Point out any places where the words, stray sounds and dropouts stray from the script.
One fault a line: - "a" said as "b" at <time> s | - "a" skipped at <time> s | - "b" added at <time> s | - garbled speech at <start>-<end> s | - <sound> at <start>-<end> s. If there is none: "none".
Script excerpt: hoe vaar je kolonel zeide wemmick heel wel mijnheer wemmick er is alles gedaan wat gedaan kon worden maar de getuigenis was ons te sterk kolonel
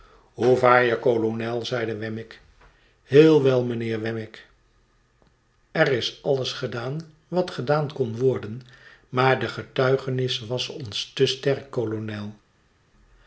none